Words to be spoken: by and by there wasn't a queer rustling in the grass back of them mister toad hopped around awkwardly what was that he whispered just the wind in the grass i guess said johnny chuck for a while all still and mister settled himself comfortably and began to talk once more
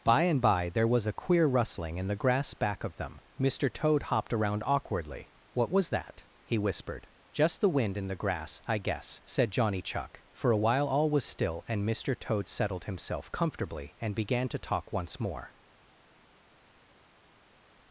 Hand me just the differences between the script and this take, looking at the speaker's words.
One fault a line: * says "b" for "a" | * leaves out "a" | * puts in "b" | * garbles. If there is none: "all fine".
* says "was" for "wasn't"
* puts in "was"
* puts in "toad"